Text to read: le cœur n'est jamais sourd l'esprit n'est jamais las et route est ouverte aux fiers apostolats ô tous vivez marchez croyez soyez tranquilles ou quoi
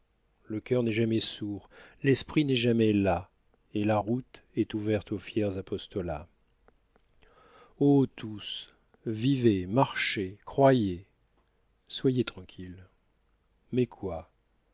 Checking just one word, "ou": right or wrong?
wrong